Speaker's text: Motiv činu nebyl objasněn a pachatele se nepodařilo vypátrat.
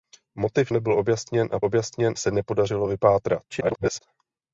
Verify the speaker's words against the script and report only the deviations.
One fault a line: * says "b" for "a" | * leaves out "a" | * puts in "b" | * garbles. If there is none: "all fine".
* leaves out "činu"
* says "objasněn" for "pachatele"
* garbles